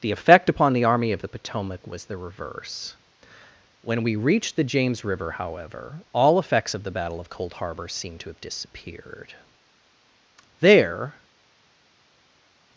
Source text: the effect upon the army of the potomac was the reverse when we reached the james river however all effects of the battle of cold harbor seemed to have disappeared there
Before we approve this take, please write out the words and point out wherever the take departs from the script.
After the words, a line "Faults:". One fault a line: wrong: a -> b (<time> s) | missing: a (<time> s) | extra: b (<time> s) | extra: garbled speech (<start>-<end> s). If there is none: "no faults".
the effect upon the army of the potomac was the reverse when we reached the james river however all effects of the battle of cold harbor seemed to have disappeared there
Faults:
no faults